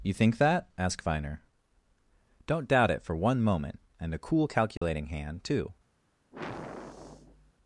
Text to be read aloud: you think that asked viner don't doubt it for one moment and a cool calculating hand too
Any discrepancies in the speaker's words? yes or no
yes